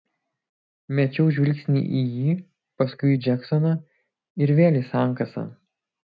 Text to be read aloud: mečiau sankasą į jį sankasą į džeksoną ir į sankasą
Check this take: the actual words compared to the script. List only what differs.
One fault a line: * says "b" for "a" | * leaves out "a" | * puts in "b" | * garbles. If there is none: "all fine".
* says "žvilgsnį" for "sankasą"
* says "paskui" for "sankasą"
* puts in "vėl"